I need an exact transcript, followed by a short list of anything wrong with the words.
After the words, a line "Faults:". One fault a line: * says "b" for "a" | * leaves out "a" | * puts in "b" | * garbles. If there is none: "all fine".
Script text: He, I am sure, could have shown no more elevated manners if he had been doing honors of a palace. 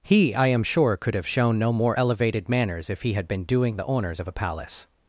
He, I am sure, could have shown no more elevated manners if he had been doing the honors of a palace.
Faults:
* puts in "the"